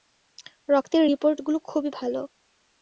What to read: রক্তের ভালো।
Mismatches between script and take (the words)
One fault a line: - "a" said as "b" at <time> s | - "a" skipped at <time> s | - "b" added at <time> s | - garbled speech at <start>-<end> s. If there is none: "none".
- "রিপোর্টগুলো খুবই" added at 1.1 s